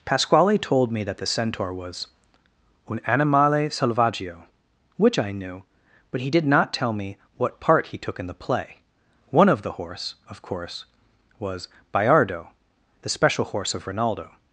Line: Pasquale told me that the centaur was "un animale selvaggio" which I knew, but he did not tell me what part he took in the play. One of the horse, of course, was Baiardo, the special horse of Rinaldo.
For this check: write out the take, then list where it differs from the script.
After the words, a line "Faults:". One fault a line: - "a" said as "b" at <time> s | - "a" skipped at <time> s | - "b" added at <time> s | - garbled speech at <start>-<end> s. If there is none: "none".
Pasquale told me that the centaur was "un animale selvaggio" which I knew, but he did not tell me what part he took in the play. One of the horse, of course, was Baiardo, the special horse of Rinaldo.
Faults:
none